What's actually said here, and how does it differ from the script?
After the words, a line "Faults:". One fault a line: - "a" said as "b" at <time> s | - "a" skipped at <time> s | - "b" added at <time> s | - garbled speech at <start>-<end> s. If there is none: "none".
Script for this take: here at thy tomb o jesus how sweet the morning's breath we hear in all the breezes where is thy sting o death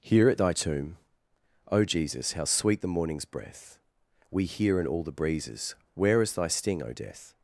here at thy tomb o jesus how sweet the morning's breath we hear in all the breezes where is thy sting o death
Faults:
none